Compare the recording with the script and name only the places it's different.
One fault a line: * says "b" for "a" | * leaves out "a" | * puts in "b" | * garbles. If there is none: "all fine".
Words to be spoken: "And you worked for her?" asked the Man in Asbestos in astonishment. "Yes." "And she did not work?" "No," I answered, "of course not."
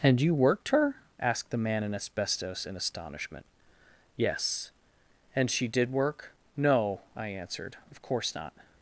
* leaves out "for"
* leaves out "not"